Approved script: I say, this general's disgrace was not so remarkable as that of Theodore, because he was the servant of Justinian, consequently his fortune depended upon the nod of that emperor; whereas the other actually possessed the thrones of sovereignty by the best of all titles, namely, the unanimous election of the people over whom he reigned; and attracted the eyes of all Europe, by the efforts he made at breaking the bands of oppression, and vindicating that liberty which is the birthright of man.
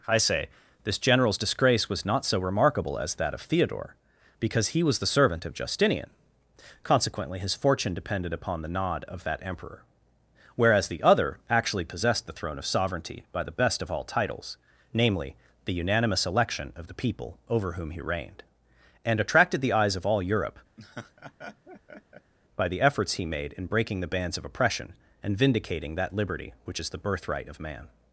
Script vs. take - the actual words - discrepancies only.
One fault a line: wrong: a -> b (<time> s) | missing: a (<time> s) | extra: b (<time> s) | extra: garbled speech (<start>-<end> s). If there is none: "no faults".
wrong: thrones -> throne (12.3 s)
wrong: at -> in (23.5 s)